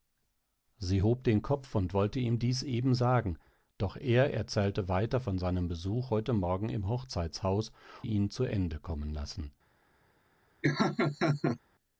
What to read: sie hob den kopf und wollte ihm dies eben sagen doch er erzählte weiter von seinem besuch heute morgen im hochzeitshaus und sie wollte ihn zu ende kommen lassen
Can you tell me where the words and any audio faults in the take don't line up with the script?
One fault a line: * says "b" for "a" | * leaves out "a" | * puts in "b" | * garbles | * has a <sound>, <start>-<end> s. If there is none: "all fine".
* leaves out "und sie wollte"
* has a laugh, 10.6-11.6 s